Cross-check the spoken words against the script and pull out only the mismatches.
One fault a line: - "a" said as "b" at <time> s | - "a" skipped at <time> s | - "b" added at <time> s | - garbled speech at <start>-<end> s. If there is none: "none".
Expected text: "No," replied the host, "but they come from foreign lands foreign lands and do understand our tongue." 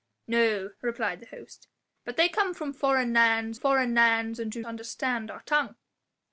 none